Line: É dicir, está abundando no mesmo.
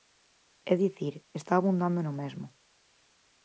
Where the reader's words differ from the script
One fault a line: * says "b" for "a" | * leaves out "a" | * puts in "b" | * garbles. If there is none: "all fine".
all fine